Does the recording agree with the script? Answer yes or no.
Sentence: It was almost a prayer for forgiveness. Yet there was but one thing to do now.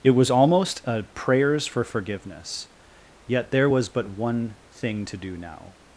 no